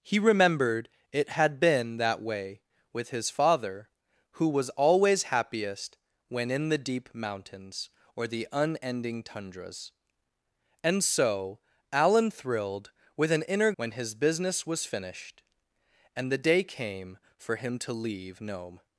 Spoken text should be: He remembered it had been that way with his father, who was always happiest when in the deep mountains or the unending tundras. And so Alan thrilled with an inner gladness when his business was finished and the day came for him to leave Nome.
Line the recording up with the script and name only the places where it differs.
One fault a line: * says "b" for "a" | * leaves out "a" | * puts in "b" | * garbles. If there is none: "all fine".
* leaves out "gladness"